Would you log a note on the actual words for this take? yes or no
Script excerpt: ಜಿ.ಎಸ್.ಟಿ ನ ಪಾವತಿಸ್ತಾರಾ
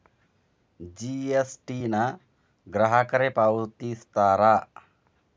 yes